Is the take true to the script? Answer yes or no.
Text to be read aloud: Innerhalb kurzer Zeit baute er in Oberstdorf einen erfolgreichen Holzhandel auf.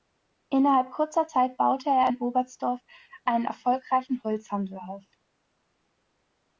yes